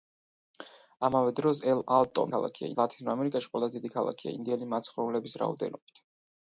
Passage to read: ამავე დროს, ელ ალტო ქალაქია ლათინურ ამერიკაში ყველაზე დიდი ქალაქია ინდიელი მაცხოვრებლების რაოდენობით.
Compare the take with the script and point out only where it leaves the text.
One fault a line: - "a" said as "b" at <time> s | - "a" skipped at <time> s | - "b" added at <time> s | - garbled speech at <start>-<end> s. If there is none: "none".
none